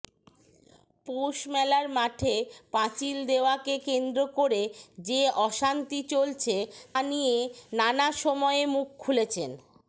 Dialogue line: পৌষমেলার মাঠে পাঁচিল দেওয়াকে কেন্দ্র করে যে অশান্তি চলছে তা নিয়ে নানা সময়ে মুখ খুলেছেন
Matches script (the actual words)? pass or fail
fail